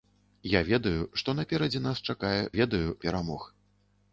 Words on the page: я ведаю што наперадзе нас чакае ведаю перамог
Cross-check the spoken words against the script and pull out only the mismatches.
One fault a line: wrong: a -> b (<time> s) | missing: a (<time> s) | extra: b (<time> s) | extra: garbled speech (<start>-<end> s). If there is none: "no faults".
no faults